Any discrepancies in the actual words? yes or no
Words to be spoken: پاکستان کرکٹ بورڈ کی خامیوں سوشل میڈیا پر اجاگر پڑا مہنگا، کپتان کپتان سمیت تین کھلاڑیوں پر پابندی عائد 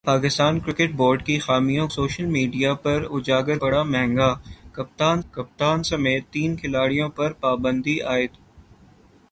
no